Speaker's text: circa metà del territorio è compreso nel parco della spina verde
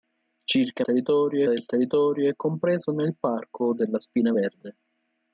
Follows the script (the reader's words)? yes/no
no